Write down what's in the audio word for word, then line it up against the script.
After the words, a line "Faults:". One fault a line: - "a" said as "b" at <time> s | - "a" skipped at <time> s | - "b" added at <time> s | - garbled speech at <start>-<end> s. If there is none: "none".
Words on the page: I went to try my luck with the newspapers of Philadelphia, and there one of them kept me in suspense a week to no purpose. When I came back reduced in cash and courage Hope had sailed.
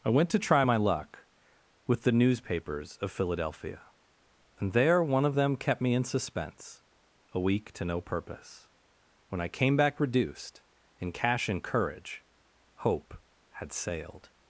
I went to try my luck with the newspapers of Philadelphia, and there one of them kept me in suspense a week to no purpose. When I came back reduced in cash and courage Hope had sailed.
Faults:
none